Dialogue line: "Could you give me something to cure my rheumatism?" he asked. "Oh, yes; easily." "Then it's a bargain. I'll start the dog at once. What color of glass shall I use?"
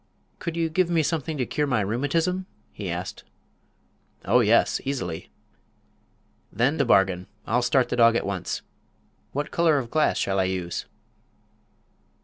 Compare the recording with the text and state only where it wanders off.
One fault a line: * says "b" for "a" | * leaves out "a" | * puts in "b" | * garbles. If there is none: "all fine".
* leaves out "it's"